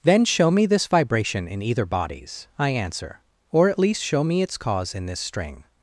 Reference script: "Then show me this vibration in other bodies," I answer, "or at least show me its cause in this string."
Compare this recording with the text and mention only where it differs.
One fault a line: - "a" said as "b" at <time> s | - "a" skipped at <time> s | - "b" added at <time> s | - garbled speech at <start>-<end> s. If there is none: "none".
- "other" said as "either" at 1.6 s